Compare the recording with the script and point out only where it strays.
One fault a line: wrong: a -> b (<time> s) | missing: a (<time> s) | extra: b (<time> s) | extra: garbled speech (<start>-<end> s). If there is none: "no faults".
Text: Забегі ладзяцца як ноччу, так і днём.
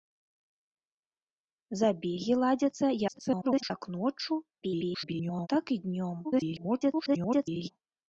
extra: garbled speech (3.1-3.7 s)
extra: garbled speech (4.6-5.5 s)
extra: garbled speech (6.2-7.7 s)